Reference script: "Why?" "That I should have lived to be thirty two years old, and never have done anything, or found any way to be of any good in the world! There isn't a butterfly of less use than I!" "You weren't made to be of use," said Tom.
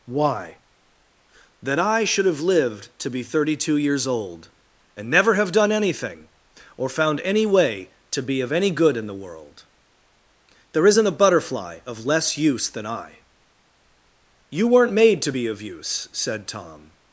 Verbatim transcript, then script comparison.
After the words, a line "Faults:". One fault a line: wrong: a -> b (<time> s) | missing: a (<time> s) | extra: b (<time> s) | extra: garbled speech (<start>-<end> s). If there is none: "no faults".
"Why?" "That I should have lived to be thirty two years old, and never have done anything, or found any way to be of any good in the world! There isn't a butterfly of less use than I!" "You weren't made to be of use," said Tom.
Faults:
no faults